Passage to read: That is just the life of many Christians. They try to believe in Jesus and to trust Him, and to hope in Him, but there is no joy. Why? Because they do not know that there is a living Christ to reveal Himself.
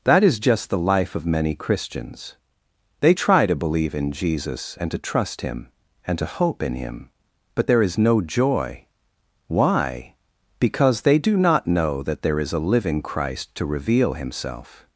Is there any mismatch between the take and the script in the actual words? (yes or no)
no